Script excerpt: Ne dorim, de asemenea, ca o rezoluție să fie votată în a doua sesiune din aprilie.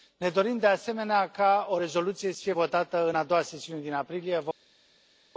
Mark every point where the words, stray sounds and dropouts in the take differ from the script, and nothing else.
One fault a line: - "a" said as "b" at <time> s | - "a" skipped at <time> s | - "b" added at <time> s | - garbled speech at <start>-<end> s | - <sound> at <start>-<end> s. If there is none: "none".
none